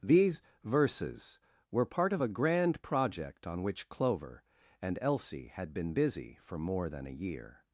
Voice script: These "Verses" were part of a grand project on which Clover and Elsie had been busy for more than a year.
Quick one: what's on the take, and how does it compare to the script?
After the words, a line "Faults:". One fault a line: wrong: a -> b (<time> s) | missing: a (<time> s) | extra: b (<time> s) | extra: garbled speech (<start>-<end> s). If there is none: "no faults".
These "Verses" were part of a grand project on which Clover and Elsie had been busy for more than a year.
Faults:
no faults